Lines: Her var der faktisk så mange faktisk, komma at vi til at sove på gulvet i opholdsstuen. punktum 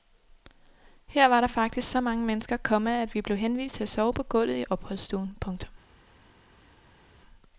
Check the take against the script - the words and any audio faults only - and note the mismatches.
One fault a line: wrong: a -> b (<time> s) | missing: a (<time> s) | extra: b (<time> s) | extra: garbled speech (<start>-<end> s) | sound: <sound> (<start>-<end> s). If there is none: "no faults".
wrong: faktisk -> mennesker (2.2 s)
extra: blev henvist (3.2 s)